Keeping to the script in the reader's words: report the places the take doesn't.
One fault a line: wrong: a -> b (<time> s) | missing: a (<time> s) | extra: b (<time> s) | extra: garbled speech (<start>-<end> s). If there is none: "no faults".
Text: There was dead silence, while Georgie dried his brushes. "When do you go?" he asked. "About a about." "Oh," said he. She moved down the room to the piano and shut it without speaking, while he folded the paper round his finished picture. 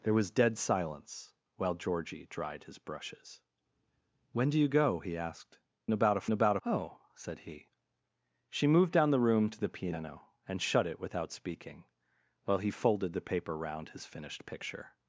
no faults